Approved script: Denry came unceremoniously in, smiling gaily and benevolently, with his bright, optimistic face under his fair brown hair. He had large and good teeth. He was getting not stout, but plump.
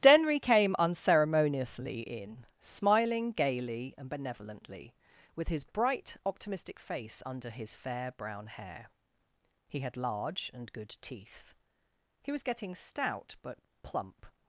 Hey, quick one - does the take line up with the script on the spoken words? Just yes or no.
no